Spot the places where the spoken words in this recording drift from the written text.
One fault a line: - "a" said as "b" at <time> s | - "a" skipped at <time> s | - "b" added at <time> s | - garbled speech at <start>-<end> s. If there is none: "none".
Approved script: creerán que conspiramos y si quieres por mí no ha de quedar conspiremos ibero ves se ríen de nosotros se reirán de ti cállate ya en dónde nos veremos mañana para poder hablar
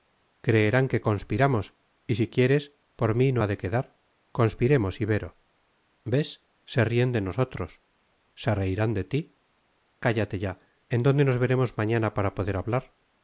none